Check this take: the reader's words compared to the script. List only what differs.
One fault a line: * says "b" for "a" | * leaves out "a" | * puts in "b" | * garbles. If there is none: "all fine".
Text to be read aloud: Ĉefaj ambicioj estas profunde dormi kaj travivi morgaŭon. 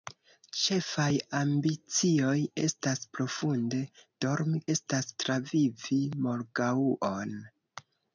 * says "estas" for "kaj"